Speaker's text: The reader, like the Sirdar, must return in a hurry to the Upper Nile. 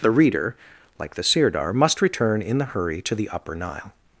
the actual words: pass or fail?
fail